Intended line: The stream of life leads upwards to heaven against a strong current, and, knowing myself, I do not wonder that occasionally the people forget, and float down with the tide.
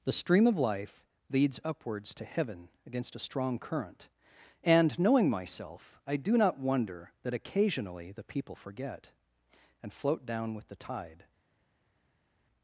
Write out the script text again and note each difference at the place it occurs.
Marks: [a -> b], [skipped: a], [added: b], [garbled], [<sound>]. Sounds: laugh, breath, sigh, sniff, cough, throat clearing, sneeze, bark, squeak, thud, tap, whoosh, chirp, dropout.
The stream of life leads upwards to heaven against a strong current, and, knowing myself, I do not wonder that occasionally the people forget, and float down with the tide.